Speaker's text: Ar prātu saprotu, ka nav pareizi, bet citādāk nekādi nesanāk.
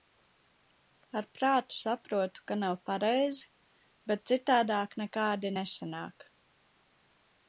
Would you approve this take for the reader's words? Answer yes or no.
yes